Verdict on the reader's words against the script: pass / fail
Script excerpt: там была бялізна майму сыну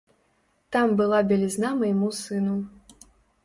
pass